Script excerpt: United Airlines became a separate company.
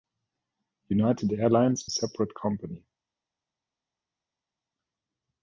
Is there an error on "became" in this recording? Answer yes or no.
yes